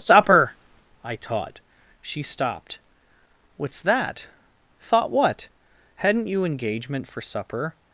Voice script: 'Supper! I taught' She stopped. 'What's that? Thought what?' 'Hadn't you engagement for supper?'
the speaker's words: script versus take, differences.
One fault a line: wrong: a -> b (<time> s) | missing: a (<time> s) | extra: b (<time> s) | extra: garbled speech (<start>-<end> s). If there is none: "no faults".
no faults